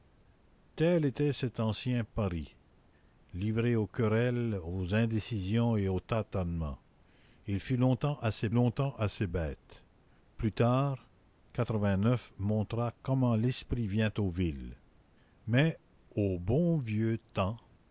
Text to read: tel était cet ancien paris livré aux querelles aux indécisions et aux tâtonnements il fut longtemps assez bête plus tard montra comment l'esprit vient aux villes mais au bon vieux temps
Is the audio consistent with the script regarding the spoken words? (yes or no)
no